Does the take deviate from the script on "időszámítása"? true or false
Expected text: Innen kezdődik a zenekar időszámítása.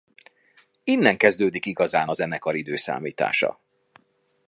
false